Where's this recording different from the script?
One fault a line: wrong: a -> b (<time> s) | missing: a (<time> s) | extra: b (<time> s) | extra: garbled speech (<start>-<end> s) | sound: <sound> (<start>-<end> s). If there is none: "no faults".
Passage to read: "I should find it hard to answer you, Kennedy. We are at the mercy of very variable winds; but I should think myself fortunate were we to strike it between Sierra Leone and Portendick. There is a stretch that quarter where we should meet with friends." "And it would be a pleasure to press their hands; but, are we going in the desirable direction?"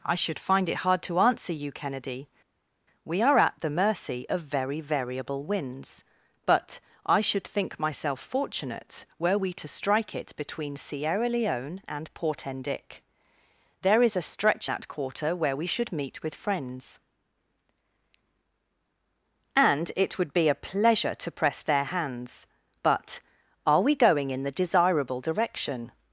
no faults